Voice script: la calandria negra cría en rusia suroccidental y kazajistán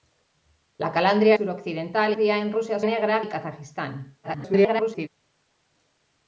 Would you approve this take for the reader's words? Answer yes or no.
no